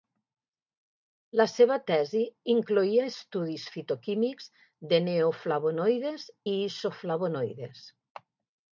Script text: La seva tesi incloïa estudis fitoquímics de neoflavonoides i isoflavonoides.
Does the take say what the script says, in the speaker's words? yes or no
yes